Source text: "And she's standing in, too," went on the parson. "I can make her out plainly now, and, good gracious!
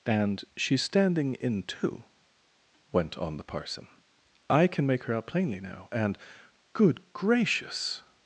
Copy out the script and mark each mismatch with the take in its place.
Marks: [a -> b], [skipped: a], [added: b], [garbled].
"And she's standing in, too," went on the parson. "I can make her out plainly now, and, good gracious!